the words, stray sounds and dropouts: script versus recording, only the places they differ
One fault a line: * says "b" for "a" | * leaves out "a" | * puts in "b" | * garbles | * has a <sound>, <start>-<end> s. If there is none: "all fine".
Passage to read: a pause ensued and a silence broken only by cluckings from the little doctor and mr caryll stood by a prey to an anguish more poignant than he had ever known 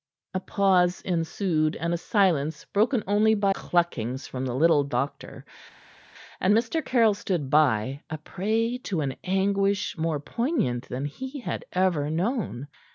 all fine